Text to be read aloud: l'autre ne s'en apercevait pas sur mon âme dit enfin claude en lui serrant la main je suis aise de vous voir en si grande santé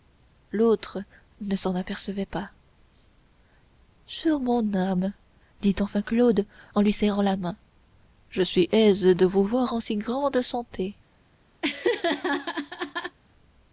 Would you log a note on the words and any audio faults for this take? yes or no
yes